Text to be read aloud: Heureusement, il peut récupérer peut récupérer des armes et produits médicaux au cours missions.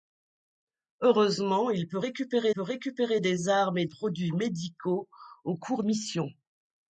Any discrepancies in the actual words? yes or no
no